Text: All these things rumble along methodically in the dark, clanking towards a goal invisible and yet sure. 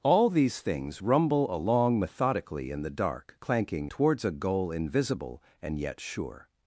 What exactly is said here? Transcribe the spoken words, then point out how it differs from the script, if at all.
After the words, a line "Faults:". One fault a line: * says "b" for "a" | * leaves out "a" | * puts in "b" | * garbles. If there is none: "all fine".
All these things rumble along methodically in the dark, clanking towards a goal invisible and yet sure.
Faults:
all fine